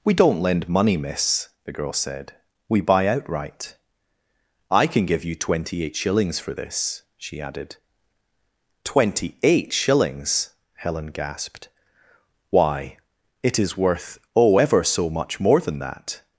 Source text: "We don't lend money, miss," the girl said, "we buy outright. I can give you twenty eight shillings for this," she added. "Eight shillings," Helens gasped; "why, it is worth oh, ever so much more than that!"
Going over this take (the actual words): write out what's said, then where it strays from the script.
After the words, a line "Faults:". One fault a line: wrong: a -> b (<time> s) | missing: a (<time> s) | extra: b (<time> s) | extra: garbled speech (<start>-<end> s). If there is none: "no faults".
"We don't lend money, miss," the girl said, "we buy outright. I can give you twenty eight shillings for this," she added. "Twenty eight shillings," Helen gasped; "why, it is worth oh, ever so much more than that!"
Faults:
extra: Twenty (8.8 s)
wrong: Helens -> Helen (10.8 s)